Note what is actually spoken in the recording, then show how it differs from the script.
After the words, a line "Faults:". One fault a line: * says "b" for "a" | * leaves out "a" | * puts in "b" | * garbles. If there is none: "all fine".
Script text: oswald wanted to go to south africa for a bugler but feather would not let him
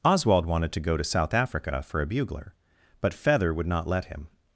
oswald wanted to go to south africa for a bugler but feather would not let him
Faults:
all fine